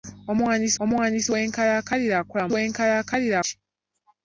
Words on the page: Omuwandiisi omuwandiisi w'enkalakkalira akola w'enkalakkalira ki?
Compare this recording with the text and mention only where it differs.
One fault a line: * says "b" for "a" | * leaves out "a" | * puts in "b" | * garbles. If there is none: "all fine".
all fine